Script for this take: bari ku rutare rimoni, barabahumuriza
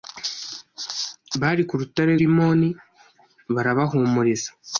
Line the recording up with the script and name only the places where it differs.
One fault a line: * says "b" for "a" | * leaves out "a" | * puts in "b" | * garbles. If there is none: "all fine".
all fine